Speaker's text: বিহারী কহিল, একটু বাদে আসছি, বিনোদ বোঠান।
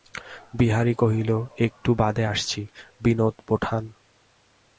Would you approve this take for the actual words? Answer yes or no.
yes